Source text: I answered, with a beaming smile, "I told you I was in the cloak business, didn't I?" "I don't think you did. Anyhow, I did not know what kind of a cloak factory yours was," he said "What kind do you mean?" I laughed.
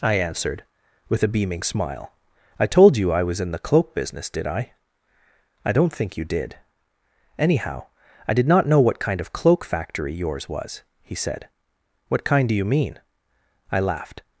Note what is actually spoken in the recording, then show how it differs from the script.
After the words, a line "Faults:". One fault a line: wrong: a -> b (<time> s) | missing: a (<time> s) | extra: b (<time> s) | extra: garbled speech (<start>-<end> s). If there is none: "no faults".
I answered, with a beaming smile, "I told you I was in the cloak business, did I?" "I don't think you did. Anyhow, I did not know what kind of cloak factory yours was," he said "What kind do you mean?" I laughed.
Faults:
wrong: didn't -> did (4.3 s)
missing: a (9.3 s)